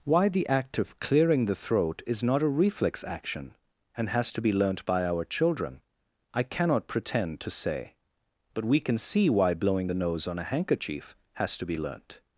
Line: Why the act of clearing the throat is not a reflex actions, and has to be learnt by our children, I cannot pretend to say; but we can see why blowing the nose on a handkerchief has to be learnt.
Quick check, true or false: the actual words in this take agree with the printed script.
false